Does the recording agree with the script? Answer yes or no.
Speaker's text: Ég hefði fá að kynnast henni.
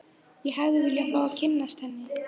no